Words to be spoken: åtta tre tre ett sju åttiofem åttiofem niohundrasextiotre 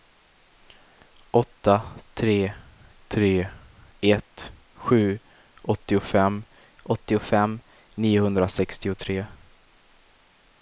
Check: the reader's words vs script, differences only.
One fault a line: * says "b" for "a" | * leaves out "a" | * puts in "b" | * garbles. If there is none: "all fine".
all fine